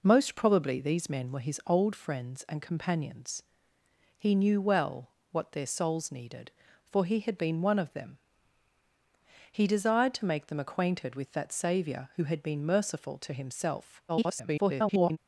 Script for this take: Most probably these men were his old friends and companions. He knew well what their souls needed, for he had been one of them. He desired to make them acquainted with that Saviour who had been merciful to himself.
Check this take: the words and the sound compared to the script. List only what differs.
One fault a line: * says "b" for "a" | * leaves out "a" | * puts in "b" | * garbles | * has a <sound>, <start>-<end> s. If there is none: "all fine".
* garbles